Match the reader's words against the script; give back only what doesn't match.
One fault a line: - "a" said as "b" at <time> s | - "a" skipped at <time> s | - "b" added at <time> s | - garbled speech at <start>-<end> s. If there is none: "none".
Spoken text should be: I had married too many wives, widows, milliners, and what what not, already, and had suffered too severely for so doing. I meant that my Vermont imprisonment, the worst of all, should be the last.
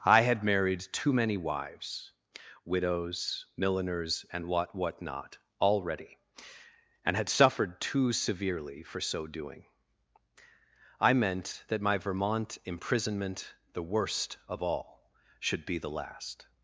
none